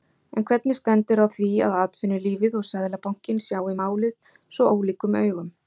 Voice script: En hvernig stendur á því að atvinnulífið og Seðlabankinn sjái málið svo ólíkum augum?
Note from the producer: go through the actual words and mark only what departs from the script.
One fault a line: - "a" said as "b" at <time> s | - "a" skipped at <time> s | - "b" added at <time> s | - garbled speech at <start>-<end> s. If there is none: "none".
none